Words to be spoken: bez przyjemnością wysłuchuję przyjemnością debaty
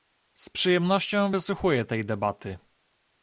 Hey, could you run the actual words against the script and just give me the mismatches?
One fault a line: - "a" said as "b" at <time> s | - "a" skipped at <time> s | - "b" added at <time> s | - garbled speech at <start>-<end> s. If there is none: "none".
- "bez" said as "z" at 0.3 s
- "przyjemnością" said as "tej" at 1.8 s